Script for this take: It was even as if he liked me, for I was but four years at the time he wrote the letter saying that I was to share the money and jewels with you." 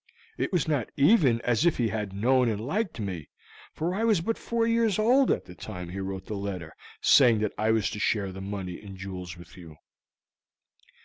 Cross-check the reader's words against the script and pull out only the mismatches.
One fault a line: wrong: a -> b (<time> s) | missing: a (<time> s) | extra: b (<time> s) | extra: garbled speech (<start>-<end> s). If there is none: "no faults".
extra: not (0.7 s)
extra: had known and (1.9 s)
extra: old (5.0 s)